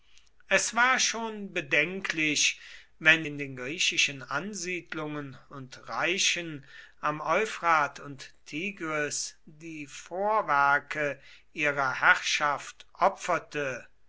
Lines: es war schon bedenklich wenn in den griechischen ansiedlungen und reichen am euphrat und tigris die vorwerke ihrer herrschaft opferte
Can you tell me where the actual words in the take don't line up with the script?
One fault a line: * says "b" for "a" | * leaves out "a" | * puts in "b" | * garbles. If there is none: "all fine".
all fine